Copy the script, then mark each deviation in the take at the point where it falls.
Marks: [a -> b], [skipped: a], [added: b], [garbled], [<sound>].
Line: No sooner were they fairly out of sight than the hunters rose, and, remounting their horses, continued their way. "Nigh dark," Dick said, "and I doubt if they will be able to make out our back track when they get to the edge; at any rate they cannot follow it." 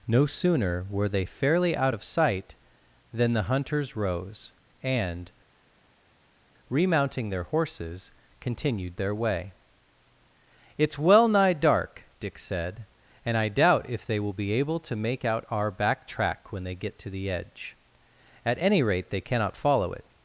No sooner were they fairly out of sight than the hunters rose, and, remounting their horses, continued their way. [added: It's well] "Nigh dark," Dick said, "and I doubt if they will be able to make out our back track when they get to the edge; at any rate they cannot follow it."